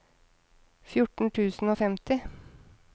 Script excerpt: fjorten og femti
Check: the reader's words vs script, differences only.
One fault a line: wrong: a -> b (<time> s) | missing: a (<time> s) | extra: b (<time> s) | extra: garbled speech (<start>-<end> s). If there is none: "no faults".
extra: tusen (1.4 s)